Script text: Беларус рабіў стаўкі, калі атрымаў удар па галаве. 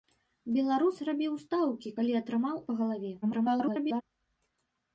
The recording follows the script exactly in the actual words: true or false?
false